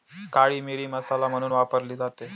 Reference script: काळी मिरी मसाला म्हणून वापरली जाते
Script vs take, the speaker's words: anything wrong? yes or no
no